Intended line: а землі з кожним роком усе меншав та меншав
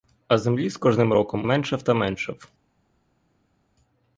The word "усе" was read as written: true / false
false